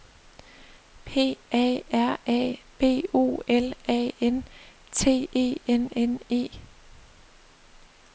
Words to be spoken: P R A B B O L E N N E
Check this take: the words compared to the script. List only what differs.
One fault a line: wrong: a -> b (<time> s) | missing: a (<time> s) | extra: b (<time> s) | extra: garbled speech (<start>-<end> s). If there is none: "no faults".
extra: A (1.5 s)
missing: B (3.1 s)
extra: A N T (3.9 s)